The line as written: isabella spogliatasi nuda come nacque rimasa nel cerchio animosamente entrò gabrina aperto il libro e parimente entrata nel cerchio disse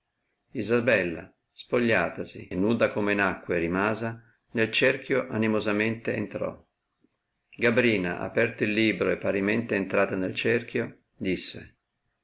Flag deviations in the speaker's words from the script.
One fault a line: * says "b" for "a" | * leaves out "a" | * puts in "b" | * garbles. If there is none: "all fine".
all fine